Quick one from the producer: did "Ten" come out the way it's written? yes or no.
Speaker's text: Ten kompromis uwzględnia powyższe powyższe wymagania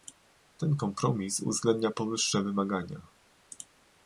yes